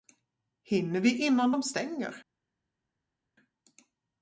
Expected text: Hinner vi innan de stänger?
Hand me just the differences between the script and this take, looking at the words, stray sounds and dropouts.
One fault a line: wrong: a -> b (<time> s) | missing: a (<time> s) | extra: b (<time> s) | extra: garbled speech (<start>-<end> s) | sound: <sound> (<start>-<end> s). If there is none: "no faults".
no faults